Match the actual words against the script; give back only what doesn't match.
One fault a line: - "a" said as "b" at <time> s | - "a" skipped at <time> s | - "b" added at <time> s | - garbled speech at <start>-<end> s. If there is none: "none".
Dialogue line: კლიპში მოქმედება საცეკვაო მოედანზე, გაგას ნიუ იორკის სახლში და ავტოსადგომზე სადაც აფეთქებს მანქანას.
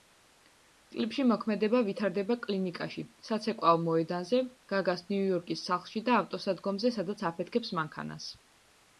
- "ვითარდება კლინიკაში" added at 1.9 s